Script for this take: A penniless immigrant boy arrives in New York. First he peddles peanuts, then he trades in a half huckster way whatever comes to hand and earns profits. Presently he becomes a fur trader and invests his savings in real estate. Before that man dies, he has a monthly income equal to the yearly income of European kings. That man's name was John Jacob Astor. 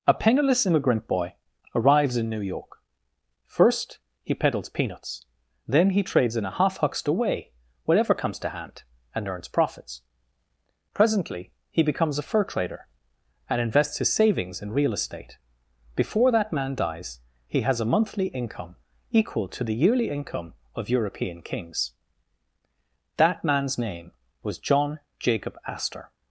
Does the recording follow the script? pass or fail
pass